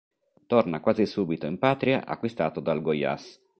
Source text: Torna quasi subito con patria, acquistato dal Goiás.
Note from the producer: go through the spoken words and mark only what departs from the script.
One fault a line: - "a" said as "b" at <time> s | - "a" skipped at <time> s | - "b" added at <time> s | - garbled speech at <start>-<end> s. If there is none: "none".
- "con" said as "in" at 1.4 s